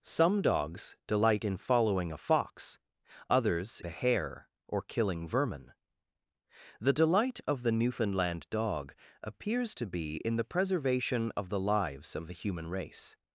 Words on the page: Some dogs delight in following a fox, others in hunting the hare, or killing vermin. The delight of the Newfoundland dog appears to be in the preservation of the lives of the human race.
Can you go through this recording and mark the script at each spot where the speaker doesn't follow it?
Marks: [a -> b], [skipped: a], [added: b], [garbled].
Some dogs delight in following a fox, others [skipped: in hunting] the hare, or killing vermin. The delight of the Newfoundland dog appears to be in the preservation of the lives of the human race.